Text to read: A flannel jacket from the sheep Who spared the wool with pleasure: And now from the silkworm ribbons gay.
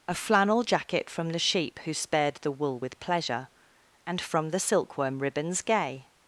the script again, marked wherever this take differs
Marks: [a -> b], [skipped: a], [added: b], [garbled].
A flannel jacket from the sheep Who spared the wool with pleasure: And [skipped: now] from the silkworm ribbons gay.